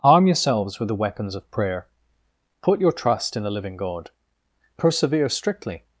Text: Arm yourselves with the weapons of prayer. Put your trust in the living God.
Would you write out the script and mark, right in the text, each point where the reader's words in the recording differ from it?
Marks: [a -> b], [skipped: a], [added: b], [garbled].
Arm yourselves with the weapons of prayer. Put your trust in the living God. [added: Persevere strictly]